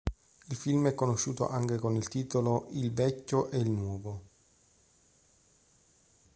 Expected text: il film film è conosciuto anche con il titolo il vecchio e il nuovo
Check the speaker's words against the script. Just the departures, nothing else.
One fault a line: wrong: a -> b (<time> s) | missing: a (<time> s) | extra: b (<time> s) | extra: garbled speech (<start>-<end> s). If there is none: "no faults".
missing: film (0.9 s)